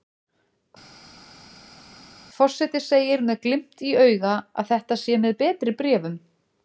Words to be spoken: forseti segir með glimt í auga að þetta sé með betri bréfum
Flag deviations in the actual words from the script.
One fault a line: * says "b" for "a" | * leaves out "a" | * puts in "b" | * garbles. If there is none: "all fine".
all fine